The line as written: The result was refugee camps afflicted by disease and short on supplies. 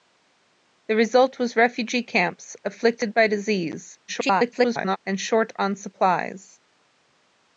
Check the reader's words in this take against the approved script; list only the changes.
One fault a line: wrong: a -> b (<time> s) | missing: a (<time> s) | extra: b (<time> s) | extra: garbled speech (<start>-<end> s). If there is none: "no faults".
extra: garbled speech (4.1-5.0 s)